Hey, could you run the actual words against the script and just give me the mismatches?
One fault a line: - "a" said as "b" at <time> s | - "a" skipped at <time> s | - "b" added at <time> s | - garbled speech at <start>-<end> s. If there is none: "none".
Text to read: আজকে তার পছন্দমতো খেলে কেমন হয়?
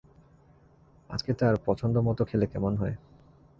none